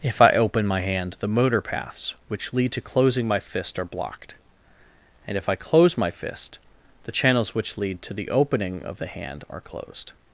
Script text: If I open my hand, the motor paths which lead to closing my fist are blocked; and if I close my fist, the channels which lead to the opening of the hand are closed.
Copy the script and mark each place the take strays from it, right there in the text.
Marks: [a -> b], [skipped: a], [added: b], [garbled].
If I open my hand, the motor paths which lead to closing my fist are blocked; and if I close my fist, the channels which lead to the opening of the hand are closed.